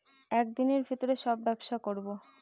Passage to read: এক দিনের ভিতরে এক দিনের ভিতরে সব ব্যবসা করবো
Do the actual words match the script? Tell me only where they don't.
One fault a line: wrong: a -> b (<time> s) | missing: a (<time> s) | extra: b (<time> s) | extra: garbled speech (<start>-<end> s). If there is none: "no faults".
missing: এক দিনের ভিতরে (1.1 s)